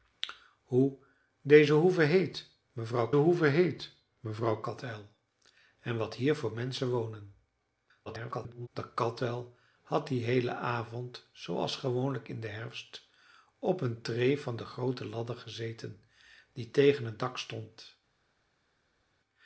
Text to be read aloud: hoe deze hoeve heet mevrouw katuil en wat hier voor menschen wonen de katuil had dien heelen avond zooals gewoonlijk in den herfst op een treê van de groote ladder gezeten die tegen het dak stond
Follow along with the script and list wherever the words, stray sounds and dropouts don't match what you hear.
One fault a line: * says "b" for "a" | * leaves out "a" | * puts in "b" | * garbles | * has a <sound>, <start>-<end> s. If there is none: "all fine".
* puts in "hoeve heet mevrouw"
* garbles